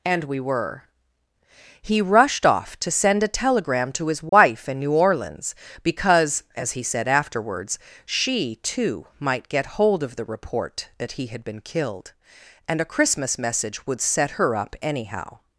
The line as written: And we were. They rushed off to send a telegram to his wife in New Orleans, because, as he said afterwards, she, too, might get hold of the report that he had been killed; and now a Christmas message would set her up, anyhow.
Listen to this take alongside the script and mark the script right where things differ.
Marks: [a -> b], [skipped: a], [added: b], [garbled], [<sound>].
And we were. [They -> He] rushed off to send a telegram to his wife [dropout] in New Orleans, because, as he said afterwards, she, too, might get hold of the report that he had been killed; and [skipped: now] a Christmas message would set her up, anyhow.